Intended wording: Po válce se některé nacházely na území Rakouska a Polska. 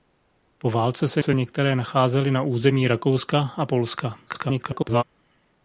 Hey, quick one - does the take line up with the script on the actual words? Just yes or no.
no